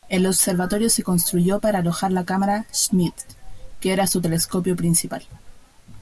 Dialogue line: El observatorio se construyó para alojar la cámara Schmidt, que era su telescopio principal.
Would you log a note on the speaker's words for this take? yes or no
no